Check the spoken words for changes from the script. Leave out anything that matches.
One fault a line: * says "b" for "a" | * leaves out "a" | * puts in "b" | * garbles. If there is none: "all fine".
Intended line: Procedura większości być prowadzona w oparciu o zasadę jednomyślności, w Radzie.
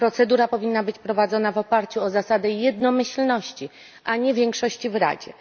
* says "powinna" for "większości"
* puts in "a nie większości"